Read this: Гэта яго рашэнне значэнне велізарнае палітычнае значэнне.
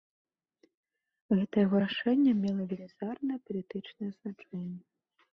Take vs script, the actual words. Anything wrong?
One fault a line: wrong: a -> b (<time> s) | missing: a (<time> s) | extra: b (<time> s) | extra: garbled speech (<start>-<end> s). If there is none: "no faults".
wrong: значэнне -> мела (2.4 s)